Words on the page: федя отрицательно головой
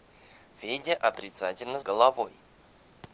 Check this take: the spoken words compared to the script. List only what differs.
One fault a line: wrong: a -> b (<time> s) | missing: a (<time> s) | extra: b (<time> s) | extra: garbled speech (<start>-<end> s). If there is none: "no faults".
no faults